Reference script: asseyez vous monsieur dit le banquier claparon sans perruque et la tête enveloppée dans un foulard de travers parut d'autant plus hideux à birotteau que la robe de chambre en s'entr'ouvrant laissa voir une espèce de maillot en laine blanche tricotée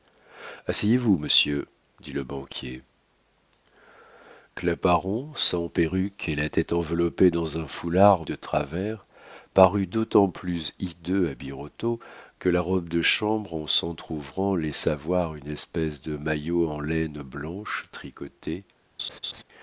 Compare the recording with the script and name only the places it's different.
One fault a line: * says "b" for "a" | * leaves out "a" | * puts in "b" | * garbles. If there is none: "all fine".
all fine